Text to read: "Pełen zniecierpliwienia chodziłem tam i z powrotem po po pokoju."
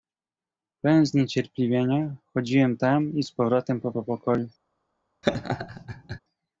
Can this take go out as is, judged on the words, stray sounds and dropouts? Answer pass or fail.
fail